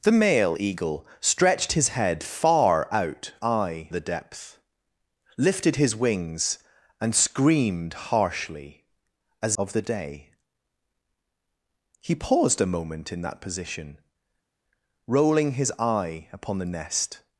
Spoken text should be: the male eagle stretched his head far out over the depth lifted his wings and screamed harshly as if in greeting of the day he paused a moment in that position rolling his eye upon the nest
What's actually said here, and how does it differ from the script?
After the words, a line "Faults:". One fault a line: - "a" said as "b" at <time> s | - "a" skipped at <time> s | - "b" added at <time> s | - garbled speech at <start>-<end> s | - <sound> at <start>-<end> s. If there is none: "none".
the male eagle stretched his head far out eye the depth lifted his wings and screamed harshly as of the day he paused a moment in that position rolling his eye upon the nest
Faults:
- "over" said as "eye" at 3.4 s
- "if in greeting" skipped at 9.6 s